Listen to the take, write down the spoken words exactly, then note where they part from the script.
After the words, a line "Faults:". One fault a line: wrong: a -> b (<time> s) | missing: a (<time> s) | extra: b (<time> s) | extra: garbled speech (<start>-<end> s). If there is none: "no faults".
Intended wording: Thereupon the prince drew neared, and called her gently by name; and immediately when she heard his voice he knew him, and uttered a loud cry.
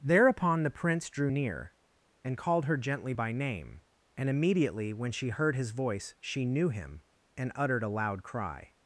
Thereupon the prince drew near, and called her gently by name; and immediately when she heard his voice she knew him, and uttered a loud cry.
Faults:
wrong: neared -> near (1.3 s)
wrong: he -> she (6.2 s)